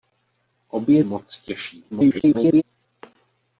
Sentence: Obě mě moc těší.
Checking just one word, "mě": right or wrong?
wrong